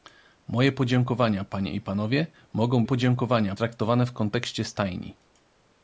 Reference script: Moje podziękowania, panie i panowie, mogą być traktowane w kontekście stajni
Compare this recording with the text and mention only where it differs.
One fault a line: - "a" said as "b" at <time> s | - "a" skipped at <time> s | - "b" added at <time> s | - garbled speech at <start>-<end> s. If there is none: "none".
- "być" said as "podziękowania" at 2.8 s